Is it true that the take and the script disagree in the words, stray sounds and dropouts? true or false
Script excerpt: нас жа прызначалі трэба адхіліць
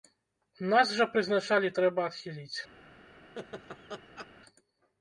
true